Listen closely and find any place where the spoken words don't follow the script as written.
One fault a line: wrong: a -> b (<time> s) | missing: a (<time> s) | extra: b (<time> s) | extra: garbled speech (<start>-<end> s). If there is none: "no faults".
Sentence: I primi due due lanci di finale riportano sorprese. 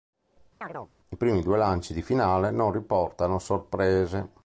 missing: due (1.6 s)
extra: non (2.5 s)